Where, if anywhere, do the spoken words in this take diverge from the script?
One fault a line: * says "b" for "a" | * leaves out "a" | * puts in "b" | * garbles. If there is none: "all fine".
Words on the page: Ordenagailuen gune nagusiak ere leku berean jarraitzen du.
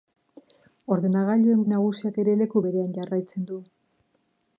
* leaves out "gune"